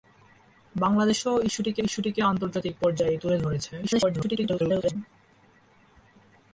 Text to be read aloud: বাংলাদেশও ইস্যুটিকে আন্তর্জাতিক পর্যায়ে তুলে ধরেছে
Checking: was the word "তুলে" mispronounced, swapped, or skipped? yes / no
no